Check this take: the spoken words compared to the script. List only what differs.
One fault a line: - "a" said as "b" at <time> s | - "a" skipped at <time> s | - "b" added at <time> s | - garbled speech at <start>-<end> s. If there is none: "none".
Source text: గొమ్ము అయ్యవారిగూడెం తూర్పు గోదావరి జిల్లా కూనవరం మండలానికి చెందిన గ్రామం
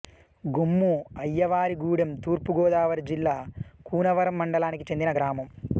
none